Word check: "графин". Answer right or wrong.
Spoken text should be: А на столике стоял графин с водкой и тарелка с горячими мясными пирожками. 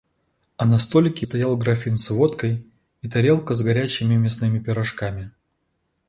right